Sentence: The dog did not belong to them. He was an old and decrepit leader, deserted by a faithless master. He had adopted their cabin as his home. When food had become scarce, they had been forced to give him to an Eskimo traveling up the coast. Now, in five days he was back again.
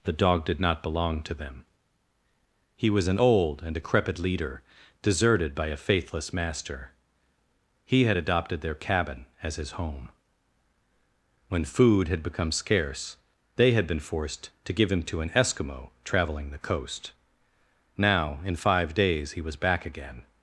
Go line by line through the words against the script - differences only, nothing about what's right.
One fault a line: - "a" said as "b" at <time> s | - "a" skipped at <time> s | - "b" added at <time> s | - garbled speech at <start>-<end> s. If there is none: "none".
- "up" skipped at 16.5 s